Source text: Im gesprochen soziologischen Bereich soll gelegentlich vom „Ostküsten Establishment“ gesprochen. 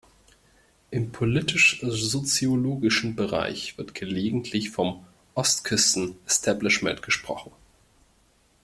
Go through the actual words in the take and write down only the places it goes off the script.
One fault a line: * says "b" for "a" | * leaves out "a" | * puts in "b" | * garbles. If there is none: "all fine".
* says "politisch" for "gesprochen"
* says "wird" for "soll"